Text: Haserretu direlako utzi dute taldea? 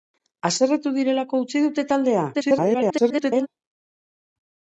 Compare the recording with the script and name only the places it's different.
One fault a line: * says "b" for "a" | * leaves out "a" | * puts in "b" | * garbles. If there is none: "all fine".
* garbles